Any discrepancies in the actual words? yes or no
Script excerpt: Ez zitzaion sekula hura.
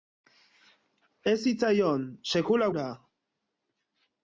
no